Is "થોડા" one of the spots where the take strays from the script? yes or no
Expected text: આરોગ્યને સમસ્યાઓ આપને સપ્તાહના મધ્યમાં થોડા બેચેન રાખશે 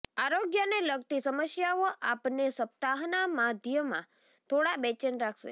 no